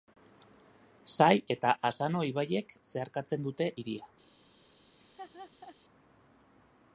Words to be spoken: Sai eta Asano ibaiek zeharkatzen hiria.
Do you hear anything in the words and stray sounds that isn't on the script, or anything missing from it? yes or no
yes